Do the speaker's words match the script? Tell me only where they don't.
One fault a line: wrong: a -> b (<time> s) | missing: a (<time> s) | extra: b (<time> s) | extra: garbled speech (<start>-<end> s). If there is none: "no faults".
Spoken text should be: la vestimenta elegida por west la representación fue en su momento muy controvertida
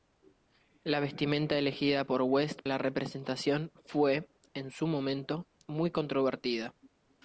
no faults